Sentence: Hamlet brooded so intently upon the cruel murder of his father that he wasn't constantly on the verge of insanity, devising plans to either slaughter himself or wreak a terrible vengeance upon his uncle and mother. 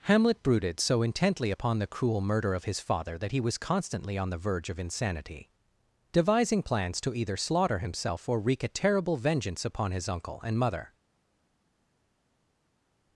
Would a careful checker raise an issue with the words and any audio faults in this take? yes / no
yes